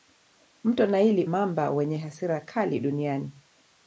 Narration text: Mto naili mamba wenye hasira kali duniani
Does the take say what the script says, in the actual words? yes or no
yes